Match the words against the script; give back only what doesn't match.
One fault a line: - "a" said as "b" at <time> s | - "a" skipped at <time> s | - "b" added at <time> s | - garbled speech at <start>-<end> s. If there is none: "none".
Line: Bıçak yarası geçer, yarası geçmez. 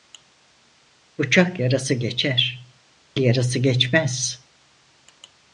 none